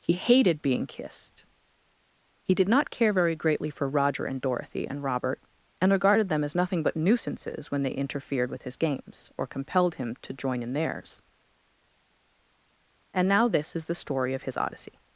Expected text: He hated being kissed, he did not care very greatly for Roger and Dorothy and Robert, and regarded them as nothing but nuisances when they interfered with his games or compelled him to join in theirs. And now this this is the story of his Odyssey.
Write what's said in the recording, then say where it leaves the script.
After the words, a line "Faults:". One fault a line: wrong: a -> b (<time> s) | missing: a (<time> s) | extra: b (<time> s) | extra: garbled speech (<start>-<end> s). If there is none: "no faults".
He hated being kissed, he did not care very greatly for Roger and Dorothy and Robert, and regarded them as nothing but nuisances when they interfered with his games or compelled him to join in theirs. And now this is the story of his Odyssey.
Faults:
missing: this (13.7 s)